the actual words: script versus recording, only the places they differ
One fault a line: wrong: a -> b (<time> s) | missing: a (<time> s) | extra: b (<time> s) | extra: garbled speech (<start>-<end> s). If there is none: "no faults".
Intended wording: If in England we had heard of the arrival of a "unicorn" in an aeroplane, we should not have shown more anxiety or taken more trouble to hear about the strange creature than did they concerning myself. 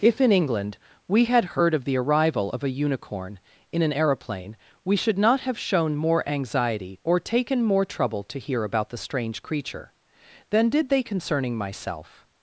no faults